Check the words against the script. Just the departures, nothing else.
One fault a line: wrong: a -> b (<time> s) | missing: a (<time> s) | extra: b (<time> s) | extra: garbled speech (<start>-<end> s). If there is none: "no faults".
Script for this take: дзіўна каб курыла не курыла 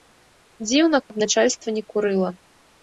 wrong: курыла -> начальства (1.2 s)